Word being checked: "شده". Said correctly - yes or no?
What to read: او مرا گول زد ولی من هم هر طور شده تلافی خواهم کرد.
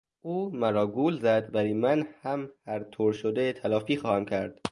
yes